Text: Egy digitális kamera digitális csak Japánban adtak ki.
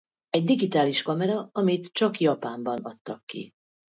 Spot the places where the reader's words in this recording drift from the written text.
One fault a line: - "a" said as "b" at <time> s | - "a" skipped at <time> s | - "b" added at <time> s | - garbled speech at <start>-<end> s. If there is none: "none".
- "digitális" said as "amit" at 1.5 s